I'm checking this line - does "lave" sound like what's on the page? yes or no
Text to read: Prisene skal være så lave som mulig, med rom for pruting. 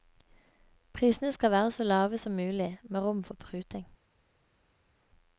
yes